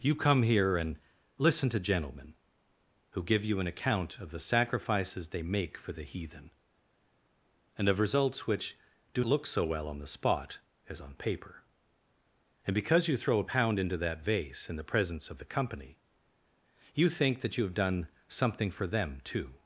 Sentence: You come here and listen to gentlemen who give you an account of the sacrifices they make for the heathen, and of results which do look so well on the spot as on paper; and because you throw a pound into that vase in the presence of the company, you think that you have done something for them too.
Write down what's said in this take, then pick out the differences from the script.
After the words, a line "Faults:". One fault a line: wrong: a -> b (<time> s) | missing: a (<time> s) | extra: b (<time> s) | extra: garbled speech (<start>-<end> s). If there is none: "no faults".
You come here and listen to gentlemen who give you an account of the sacrifices they make for the heathen, and of results which do look so well on the spot as on paper; and because you throw a pound into that vase in the presence of the company, you think that you have done something for them too.
Faults:
no faults